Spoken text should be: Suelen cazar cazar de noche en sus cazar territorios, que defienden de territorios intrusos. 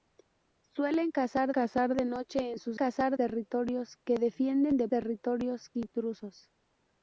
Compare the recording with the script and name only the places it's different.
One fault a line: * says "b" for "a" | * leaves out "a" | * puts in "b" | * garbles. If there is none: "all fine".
all fine